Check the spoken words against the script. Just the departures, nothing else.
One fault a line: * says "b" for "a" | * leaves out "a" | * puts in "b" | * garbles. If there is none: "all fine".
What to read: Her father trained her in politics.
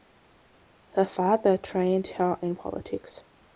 all fine